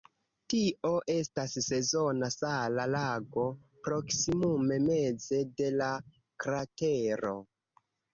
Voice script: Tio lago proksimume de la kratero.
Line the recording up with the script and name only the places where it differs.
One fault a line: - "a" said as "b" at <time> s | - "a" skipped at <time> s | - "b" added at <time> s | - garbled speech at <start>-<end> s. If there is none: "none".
- "estas sezona sala" added at 1.1 s
- "meze" added at 4.9 s